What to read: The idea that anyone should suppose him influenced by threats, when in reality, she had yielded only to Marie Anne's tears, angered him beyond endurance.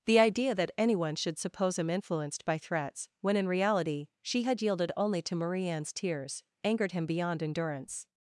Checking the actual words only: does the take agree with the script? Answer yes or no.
yes